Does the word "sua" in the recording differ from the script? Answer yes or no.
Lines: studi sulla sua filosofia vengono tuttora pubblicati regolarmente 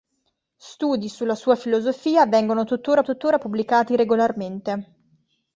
no